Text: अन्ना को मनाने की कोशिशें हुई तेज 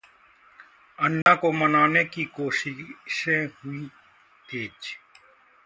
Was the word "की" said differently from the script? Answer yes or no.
no